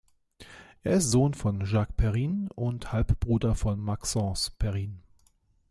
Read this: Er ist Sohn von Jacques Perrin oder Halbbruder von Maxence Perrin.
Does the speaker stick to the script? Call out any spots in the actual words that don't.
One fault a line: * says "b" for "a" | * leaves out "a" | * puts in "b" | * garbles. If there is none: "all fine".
* says "und" for "oder"